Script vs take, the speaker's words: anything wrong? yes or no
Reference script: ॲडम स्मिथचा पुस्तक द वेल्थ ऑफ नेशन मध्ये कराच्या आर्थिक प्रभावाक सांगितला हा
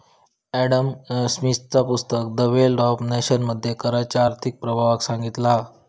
no